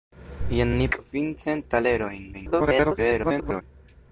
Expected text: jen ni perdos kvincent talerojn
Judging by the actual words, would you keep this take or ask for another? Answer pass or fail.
fail